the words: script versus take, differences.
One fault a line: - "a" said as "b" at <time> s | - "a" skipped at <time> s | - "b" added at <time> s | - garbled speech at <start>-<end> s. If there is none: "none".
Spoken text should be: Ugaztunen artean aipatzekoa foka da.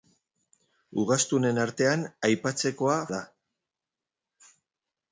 - "foka" skipped at 3.0 s